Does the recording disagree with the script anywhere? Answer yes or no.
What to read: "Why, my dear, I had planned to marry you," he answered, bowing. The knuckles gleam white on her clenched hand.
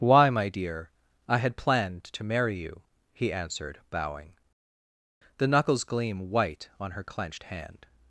no